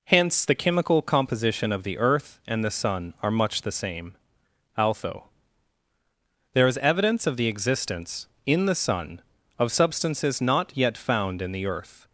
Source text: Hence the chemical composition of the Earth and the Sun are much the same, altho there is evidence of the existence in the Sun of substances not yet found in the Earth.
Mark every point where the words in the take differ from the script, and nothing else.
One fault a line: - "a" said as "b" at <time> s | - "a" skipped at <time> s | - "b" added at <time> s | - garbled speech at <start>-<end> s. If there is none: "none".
none